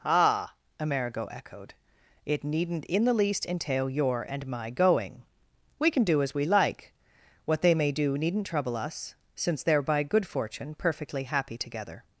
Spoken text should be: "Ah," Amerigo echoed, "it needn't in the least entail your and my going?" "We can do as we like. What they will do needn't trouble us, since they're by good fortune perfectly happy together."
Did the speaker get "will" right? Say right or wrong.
wrong